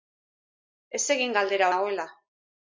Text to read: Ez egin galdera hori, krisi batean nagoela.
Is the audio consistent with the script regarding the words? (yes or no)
no